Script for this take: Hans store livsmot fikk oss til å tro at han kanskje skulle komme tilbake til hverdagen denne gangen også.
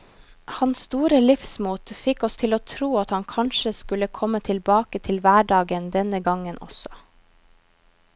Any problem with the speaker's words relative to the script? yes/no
no